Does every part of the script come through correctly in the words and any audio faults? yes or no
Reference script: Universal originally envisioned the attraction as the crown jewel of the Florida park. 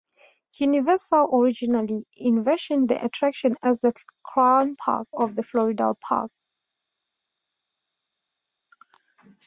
no